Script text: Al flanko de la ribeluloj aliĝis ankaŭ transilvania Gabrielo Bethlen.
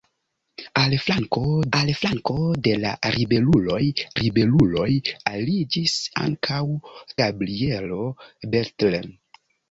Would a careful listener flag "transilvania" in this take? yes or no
yes